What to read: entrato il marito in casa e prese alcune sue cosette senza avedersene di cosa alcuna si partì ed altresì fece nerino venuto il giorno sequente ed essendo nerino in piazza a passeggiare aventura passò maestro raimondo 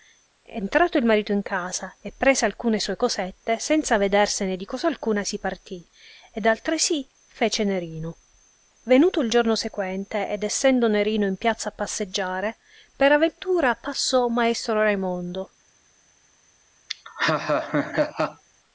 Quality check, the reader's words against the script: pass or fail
fail